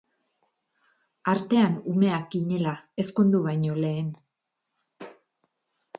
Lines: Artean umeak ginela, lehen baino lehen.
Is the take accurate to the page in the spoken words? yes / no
no